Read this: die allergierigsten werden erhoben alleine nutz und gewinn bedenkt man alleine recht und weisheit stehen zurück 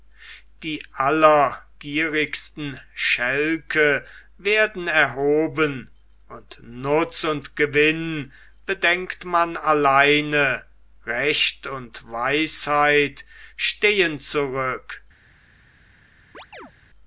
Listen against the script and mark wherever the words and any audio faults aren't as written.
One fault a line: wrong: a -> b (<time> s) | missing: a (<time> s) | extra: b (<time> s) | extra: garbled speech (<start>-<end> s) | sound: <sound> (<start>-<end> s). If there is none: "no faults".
extra: schälke (3.0 s)
wrong: alleine -> und (6.3 s)
sound: chirp (16.3-16.7 s)